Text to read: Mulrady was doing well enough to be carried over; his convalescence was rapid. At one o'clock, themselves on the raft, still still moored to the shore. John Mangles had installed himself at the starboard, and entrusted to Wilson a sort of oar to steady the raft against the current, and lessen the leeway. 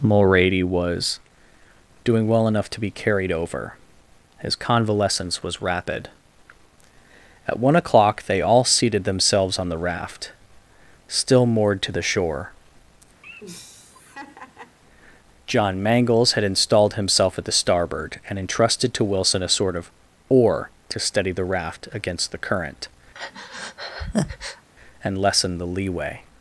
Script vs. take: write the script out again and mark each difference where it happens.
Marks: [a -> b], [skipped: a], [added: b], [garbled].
Mulrady was doing well enough to be carried over; his convalescence was rapid. At one o'clock, [added: they all seated] themselves on the raft, still [skipped: still] moored to the shore. John Mangles had installed himself at the starboard, and entrusted to Wilson a sort of oar to steady the raft against the current, and lessen the leeway.